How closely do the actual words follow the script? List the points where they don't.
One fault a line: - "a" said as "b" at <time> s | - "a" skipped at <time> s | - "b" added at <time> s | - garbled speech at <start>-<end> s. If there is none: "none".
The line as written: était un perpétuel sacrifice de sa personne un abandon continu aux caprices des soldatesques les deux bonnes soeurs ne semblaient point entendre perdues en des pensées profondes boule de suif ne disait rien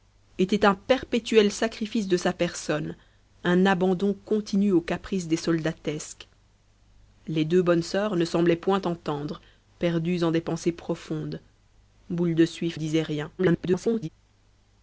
- "ne" skipped at 12.8 s
- garbled speech at 13.4-14.1 s